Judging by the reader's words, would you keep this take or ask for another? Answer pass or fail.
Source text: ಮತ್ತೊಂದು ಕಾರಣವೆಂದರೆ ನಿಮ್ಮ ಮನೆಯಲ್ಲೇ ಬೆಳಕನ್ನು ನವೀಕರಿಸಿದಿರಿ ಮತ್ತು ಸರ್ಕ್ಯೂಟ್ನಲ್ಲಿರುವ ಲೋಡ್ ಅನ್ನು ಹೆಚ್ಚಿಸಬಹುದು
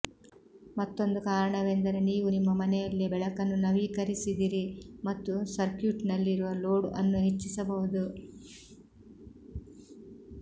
fail